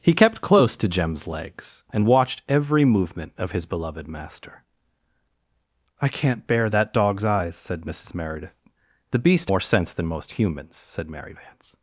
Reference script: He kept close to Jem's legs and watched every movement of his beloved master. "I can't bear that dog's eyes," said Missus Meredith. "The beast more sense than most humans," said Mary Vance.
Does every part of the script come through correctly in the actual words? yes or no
yes